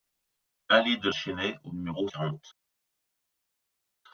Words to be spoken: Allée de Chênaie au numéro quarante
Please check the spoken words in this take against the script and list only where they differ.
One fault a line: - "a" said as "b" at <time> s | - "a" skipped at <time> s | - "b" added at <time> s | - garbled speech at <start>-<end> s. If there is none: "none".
none